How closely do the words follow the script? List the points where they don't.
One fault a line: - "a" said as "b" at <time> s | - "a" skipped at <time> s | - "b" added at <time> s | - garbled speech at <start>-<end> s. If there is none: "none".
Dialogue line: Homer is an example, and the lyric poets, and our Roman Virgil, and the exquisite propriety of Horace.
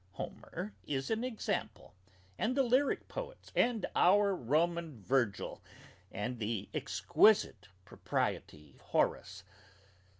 - "of" skipped at 8.8 s